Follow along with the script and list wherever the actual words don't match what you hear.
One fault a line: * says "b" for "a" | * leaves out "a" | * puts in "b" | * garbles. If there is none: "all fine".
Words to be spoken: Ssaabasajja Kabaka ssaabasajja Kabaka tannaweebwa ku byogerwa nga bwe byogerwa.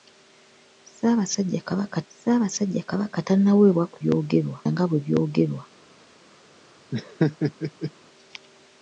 all fine